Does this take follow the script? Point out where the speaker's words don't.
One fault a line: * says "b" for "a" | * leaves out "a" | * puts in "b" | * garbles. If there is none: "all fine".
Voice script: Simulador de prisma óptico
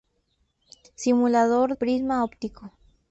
* leaves out "de"